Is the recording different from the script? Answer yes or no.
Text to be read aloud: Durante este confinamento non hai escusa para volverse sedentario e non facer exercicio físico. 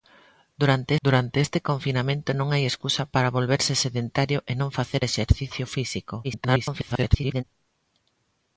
yes